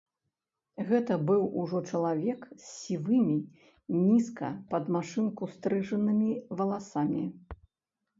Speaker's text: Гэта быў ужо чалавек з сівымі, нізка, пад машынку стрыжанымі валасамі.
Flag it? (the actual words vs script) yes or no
no